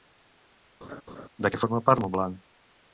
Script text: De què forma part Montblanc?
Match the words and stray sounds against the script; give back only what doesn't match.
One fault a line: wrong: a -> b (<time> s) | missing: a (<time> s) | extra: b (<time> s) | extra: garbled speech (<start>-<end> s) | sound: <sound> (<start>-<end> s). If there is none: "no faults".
sound: laugh (0.8-1.3 s)